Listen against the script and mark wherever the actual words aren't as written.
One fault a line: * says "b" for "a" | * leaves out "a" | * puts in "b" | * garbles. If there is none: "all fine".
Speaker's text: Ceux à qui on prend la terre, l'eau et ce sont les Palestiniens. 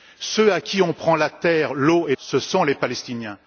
all fine